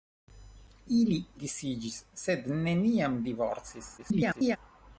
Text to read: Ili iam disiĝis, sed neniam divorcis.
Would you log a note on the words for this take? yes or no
yes